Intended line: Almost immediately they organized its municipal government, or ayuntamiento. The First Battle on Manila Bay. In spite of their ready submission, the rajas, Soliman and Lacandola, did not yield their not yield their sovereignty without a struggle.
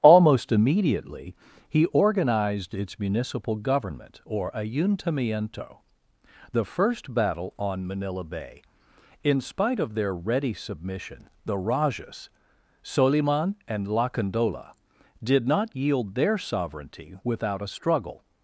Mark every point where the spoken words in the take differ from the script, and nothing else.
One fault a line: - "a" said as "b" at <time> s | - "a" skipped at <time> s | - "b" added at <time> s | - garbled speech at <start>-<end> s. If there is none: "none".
- "they" said as "he" at 1.7 s
- "not yield their" skipped at 16.4 s